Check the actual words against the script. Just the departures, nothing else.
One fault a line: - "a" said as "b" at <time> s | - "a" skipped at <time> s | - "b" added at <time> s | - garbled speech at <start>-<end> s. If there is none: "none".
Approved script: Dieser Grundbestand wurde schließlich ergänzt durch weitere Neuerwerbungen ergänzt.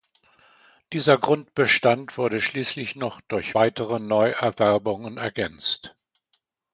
- "ergänzt" said as "noch" at 3.0 s